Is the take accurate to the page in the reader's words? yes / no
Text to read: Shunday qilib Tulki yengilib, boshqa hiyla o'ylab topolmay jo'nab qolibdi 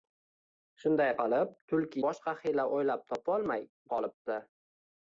no